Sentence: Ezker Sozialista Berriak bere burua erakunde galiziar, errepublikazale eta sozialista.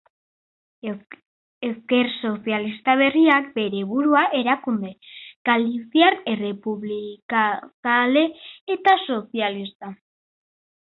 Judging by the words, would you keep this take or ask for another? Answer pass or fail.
pass